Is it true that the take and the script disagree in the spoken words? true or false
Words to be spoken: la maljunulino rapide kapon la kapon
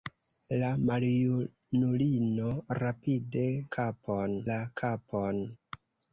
false